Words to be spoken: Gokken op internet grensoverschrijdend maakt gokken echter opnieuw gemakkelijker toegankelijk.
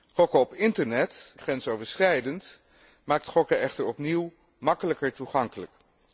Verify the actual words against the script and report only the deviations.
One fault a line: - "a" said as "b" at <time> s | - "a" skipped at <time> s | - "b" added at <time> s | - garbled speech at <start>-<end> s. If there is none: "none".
none